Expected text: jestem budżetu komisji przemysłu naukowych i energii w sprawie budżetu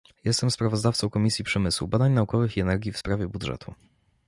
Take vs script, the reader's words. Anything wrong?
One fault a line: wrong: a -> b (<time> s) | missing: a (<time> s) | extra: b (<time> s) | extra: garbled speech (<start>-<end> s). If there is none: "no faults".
wrong: budżetu -> sprawozdawcą (0.5 s)
extra: badań (1.9 s)